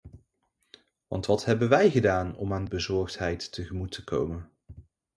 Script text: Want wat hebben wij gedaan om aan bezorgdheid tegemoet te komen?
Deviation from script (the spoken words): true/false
false